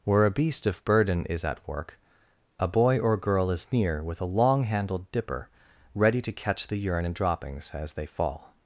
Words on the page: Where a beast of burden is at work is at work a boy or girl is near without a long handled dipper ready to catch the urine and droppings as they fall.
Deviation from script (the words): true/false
true